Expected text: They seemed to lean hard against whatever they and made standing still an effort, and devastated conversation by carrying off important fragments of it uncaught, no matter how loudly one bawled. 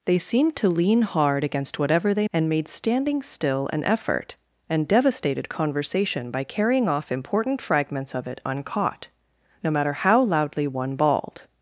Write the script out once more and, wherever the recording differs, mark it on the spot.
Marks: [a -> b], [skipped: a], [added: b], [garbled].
They seemed to lean hard against whatever they and made standing still an effort, and devastated conversation by carrying off important fragments of it uncaught, no matter how loudly one bawled.